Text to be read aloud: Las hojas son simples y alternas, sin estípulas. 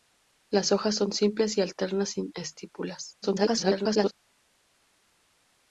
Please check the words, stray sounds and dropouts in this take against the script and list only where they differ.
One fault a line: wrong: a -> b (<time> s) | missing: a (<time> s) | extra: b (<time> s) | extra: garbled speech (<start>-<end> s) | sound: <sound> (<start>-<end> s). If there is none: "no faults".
extra: garbled speech (3.2-4.1 s)